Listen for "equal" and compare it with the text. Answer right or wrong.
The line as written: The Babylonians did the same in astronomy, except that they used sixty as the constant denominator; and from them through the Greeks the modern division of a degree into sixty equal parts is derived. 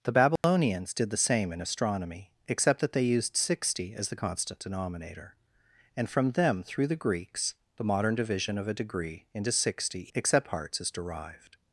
wrong